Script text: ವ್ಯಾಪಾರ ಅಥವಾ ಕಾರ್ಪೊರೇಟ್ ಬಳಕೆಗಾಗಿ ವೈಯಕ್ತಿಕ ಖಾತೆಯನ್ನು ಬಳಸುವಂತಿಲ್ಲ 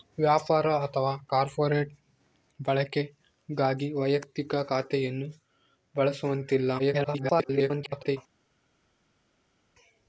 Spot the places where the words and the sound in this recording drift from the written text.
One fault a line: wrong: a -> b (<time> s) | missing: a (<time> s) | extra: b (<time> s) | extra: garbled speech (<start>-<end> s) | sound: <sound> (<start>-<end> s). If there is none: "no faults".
extra: garbled speech (6.8-8.2 s)